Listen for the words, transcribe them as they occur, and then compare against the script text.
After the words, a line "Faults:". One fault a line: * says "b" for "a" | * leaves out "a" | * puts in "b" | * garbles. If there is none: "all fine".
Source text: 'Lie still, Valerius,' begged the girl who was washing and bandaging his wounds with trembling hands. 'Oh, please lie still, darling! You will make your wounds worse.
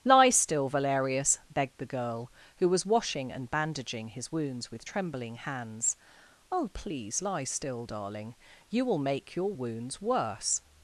'Lie still, Valerius,' begged the girl who was washing and bandaging his wounds with trembling hands. 'Oh, please lie still, darling! You will make your wounds worse.
Faults:
all fine